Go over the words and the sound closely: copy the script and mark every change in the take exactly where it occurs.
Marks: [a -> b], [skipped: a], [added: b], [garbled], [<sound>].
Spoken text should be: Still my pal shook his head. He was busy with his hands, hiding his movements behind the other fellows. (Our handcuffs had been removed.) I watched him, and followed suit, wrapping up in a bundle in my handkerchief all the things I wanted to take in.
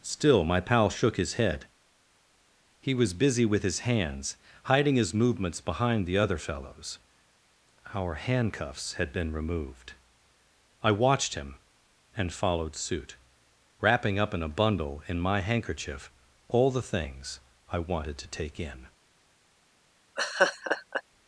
Still my pal shook his head. He was busy with his hands, hiding his movements behind the other fellows. (Our handcuffs had been removed.) I watched him, and followed suit, wrapping up in a bundle in my handkerchief all the things I wanted to take in. [laugh]